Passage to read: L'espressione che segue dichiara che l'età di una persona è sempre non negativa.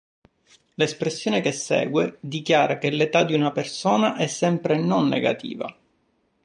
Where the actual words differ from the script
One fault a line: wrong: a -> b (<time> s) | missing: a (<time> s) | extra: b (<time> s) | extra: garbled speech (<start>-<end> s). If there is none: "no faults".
no faults